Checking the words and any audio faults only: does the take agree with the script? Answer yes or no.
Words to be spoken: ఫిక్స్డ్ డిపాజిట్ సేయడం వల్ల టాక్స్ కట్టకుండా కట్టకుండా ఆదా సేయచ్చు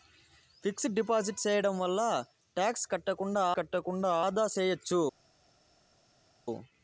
yes